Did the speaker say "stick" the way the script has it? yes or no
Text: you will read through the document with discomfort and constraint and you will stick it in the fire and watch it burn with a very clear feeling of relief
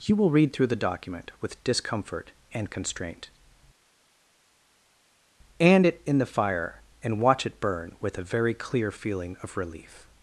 no